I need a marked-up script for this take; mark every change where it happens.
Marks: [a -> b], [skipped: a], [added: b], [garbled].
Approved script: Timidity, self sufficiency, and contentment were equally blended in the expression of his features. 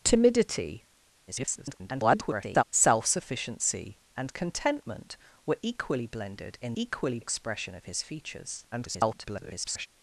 Timidity, [garbled] self sufficiency, and contentment were equally blended in [the -> equally] expression of his features. [garbled]